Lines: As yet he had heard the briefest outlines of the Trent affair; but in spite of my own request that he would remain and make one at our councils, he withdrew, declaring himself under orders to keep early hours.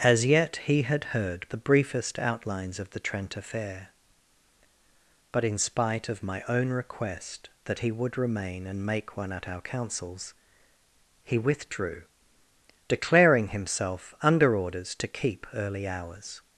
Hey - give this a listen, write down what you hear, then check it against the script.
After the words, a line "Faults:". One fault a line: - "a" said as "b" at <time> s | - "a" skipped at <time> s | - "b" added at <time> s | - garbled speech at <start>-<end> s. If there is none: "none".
As yet he had heard the briefest outlines of the Trent affair; but in spite of my own request that he would remain and make one at our councils, he withdrew, declaring himself under orders to keep early hours.
Faults:
none